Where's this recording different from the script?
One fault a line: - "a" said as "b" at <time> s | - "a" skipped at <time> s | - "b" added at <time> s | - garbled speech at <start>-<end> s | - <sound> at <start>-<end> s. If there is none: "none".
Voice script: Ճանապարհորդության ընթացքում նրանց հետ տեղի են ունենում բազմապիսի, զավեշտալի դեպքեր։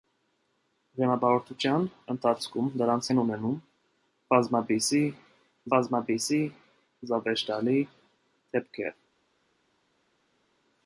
- "հետ տեղի" skipped at 3.1 s
- "բազմապիսի" added at 5.7 s